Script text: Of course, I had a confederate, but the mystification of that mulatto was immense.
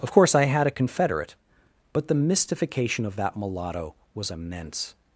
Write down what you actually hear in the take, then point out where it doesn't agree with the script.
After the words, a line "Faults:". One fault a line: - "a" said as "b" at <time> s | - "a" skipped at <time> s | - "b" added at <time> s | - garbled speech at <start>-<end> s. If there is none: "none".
Of course, I had a confederate, but the mystification of that mulatto was immense.
Faults:
none